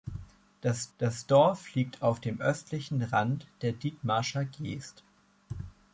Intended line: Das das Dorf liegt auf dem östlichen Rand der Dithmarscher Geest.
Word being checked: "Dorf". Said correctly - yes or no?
yes